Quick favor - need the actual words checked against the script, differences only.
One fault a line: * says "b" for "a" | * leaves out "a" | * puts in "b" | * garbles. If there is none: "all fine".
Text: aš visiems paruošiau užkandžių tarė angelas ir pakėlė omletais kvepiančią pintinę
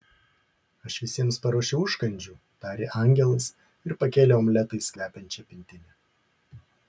all fine